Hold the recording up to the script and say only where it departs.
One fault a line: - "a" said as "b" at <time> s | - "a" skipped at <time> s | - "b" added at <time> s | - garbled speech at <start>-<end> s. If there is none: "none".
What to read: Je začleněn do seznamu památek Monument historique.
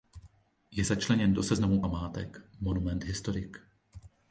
none